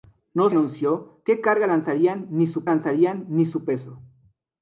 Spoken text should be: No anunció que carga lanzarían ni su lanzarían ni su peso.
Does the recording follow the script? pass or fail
pass